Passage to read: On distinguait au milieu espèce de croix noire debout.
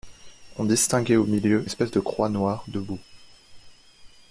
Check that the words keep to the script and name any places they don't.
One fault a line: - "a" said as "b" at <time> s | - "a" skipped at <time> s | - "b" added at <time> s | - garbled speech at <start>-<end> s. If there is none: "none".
none